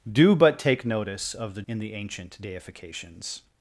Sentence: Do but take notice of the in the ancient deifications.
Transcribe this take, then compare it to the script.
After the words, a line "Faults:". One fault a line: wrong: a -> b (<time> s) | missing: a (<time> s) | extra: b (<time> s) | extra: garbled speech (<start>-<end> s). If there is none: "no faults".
Do but take notice of the in the ancient deifications.
Faults:
no faults